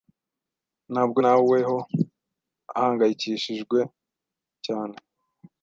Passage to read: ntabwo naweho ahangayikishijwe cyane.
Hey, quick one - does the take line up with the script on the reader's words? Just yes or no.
yes